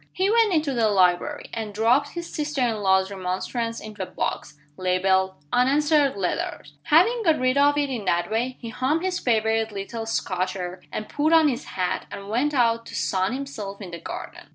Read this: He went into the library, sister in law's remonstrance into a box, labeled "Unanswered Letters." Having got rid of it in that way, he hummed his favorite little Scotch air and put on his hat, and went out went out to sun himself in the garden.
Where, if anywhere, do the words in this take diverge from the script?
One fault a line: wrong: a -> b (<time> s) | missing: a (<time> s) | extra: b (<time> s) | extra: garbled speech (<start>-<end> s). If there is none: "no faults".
extra: and dropped his (1.5 s)
missing: went out (12.8 s)